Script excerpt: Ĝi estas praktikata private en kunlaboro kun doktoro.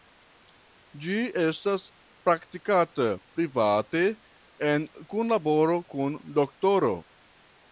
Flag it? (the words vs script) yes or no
no